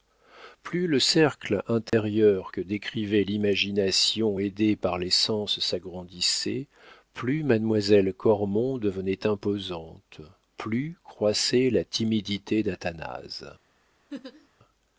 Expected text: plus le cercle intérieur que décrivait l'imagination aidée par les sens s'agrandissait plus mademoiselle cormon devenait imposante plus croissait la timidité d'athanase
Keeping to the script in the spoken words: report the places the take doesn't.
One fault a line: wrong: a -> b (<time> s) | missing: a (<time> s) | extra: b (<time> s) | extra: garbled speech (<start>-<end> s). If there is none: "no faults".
no faults